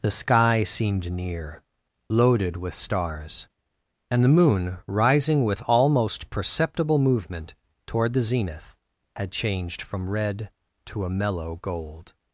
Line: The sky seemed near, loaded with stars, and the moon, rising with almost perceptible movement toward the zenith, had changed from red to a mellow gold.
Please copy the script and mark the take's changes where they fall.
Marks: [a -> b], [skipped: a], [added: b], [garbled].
The sky seemed near, loaded with stars, and the moon, rising with almost perceptible movement toward the zenith, had changed from red to a mellow gold.